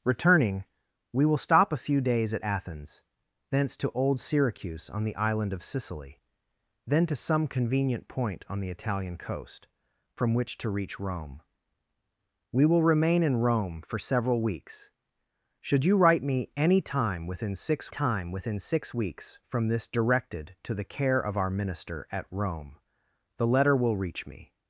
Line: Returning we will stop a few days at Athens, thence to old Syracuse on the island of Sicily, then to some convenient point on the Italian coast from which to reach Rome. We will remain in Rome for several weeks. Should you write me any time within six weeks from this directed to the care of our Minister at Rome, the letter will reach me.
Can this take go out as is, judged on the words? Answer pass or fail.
fail